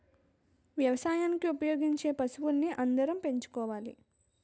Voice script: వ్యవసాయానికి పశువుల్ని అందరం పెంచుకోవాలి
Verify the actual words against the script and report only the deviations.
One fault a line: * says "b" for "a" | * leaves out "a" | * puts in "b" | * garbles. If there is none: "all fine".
* puts in "ఉపయోగించే"